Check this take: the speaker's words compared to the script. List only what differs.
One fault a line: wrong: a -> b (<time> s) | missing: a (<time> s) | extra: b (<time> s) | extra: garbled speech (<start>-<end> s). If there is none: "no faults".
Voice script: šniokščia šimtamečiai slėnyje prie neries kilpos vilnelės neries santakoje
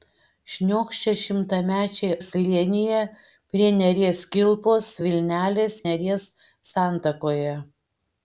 no faults